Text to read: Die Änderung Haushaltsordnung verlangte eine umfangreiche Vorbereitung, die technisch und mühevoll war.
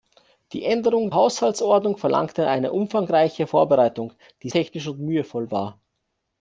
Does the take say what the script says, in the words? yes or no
yes